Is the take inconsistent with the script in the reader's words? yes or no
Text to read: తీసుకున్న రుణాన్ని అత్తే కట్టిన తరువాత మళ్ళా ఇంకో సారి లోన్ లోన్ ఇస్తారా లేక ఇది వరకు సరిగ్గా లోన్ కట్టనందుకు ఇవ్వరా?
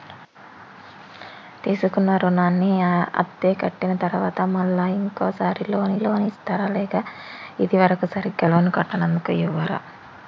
no